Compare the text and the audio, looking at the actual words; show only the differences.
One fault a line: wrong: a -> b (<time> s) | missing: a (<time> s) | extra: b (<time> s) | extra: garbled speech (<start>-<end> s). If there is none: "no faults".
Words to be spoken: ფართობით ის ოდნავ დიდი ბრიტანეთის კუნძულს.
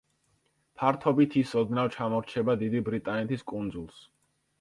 extra: ჩამორჩება (1.9 s)